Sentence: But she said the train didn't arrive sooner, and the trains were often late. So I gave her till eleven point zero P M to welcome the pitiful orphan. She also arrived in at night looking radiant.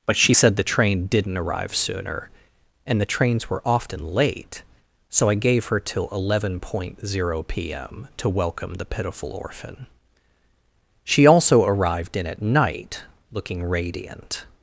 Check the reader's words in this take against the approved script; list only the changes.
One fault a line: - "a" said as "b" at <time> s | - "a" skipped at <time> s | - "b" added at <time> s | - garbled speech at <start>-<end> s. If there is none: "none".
none